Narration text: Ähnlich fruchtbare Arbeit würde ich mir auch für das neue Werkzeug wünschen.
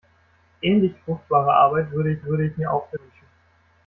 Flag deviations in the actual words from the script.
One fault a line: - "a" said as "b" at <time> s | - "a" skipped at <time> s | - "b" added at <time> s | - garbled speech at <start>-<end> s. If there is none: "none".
- "würde ich" added at 2.2 s
- "das neue Werkzeug" skipped at 3.0 s